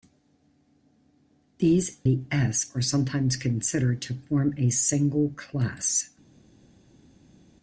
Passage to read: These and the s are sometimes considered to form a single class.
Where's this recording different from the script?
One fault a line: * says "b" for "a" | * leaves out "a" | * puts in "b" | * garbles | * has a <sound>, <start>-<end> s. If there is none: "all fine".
* leaves out "and"